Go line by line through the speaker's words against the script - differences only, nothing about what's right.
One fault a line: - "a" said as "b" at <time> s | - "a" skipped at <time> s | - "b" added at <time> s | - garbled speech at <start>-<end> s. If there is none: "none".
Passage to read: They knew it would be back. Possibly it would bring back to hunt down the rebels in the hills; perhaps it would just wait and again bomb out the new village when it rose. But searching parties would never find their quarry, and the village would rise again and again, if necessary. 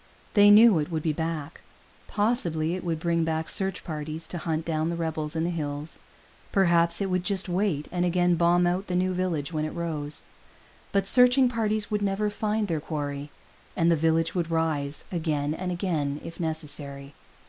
- "search parties" added at 3.5 s